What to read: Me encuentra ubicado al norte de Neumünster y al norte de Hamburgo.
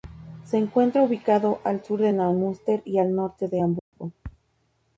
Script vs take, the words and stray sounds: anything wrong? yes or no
yes